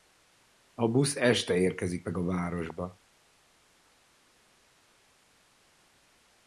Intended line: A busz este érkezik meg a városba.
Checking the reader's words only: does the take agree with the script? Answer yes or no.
yes